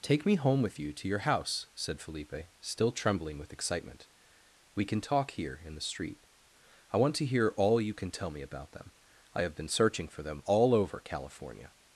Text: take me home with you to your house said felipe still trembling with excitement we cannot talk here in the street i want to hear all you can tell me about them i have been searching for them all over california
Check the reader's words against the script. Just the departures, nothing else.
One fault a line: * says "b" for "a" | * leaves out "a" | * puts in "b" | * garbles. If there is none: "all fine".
* says "can" for "cannot"